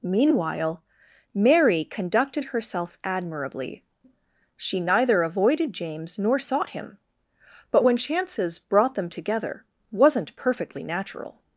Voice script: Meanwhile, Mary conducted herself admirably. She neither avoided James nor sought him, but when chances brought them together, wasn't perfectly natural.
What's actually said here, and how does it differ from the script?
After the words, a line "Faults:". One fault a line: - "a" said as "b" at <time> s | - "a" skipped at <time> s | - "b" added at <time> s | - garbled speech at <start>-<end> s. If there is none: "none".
Meanwhile, Mary conducted herself admirably. She neither avoided James nor sought him, but when chances brought them together, wasn't perfectly natural.
Faults:
none